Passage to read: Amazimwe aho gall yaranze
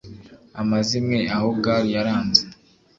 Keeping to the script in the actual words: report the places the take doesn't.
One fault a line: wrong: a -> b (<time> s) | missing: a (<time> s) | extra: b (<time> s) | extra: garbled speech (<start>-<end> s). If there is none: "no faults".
no faults